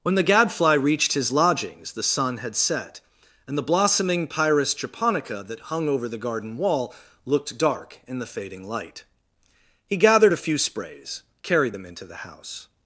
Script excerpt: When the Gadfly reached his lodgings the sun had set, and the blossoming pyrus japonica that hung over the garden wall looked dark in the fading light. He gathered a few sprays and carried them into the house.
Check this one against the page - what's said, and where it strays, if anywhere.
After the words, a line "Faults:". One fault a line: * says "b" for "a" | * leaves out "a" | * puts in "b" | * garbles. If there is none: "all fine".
When the Gadfly reached his lodgings the sun had set, and the blossoming pyrus japonica that hung over the garden wall looked dark in the fading light. He gathered a few sprays carried them into the house.
Faults:
* leaves out "and"